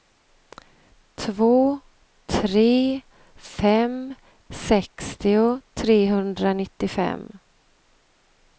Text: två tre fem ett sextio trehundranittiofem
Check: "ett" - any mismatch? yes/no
yes